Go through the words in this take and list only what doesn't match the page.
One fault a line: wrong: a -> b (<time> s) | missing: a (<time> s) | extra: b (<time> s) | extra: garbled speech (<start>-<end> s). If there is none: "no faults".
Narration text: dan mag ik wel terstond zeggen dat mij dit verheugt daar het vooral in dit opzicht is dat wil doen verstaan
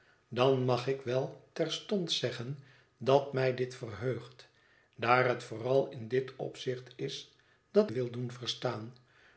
no faults